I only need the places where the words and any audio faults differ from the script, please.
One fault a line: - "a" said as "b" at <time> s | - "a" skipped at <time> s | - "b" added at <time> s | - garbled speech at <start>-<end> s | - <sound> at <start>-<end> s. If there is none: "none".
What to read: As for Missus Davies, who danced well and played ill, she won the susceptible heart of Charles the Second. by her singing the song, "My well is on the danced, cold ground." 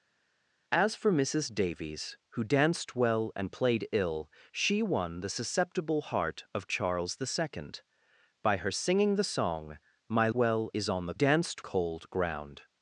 none